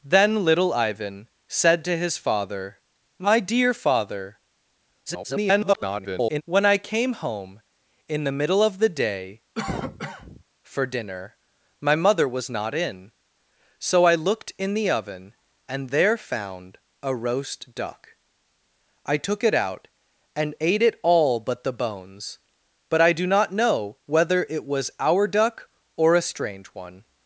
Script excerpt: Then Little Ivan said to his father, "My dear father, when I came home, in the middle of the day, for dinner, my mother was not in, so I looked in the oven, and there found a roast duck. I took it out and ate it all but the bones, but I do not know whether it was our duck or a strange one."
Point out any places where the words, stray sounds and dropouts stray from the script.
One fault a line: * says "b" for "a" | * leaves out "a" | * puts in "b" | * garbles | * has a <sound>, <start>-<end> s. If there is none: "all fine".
* garbles
* has a cough, 9.6-10.4 s